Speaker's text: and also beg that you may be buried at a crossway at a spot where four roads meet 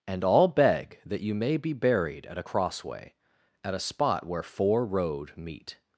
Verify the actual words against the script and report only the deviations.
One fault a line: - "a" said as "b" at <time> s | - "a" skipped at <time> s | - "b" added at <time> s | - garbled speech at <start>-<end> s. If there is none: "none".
- "also" said as "all" at 0.2 s
- "roads" said as "road" at 4.8 s